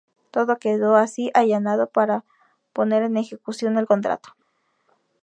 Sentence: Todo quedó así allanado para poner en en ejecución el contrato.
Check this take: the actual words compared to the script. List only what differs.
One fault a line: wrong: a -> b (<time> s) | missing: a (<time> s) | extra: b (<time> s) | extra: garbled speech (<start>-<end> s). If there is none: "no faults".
missing: en (3.2 s)